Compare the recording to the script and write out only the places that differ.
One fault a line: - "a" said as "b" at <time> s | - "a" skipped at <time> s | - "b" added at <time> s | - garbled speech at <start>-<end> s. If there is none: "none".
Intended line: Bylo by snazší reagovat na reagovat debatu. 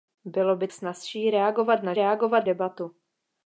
none